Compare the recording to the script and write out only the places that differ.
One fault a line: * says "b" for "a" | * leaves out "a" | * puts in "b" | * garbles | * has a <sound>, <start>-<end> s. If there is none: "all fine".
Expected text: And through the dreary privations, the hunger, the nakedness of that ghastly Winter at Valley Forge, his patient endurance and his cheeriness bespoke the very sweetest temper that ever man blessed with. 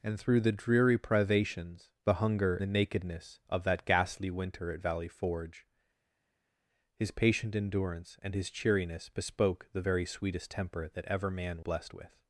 all fine